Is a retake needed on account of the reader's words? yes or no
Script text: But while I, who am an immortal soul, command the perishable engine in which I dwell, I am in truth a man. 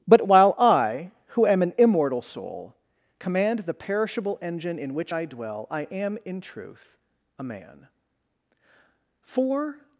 yes